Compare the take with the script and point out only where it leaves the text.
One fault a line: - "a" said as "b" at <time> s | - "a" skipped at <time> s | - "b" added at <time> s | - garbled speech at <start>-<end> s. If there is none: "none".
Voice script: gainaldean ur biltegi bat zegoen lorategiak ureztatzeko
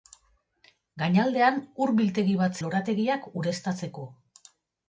- "zegoen" skipped at 2.6 s